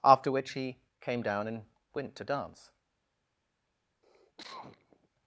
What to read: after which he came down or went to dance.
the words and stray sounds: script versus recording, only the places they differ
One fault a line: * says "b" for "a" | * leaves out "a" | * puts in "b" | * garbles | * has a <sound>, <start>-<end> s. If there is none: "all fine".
* says "and" for "or"
* has a cough, 4.0-5.1 s